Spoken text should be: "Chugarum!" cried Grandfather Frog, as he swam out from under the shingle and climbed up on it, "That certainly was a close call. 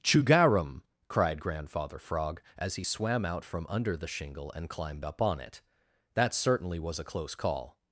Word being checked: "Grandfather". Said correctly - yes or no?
yes